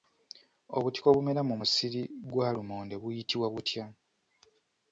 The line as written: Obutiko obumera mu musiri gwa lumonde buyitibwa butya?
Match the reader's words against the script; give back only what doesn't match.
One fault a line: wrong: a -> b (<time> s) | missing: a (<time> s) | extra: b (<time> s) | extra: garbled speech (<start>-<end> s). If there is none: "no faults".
no faults